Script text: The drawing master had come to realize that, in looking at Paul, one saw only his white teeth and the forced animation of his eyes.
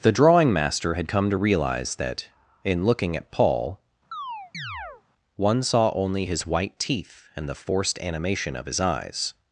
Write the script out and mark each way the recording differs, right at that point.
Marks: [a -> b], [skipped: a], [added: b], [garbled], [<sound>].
The drawing master had come to realize that, in looking at Paul, [chirp] one saw only his white teeth and the forced animation of his eyes.